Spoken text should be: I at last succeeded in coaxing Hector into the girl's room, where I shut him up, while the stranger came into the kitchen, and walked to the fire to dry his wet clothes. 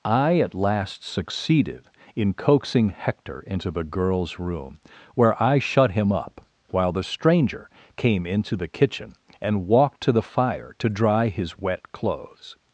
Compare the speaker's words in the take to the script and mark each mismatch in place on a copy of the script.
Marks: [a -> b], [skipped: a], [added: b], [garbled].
I at last succeeded in coaxing Hector into the girl's room, where I shut him up, while the stranger came into the kitchen, and walked to the fire to dry his wet clothes.